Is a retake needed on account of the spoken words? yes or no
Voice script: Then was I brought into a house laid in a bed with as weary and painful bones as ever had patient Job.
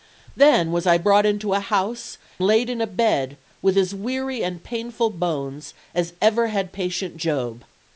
no